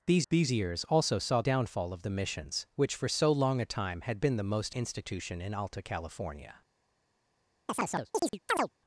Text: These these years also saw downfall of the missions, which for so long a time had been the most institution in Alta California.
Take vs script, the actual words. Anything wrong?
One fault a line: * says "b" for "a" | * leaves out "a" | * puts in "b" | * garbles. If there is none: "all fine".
all fine